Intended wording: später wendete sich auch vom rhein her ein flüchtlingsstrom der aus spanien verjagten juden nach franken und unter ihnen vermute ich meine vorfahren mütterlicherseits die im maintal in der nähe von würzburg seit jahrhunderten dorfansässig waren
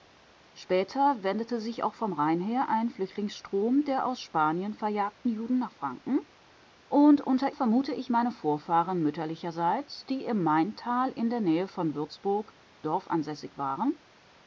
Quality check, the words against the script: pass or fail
fail